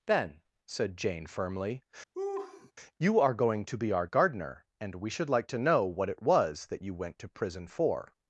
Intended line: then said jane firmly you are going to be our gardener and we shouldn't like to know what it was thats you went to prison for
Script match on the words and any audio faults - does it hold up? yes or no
no